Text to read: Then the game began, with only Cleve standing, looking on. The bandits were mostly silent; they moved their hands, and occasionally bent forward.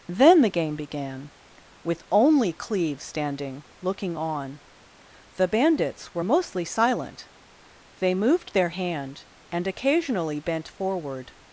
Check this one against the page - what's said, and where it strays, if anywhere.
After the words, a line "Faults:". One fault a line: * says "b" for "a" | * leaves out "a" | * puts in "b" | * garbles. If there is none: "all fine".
Then the game began, with only Cleve standing, looking on. The bandits were mostly silent; they moved their hand, and occasionally bent forward.
Faults:
* says "hand" for "hands"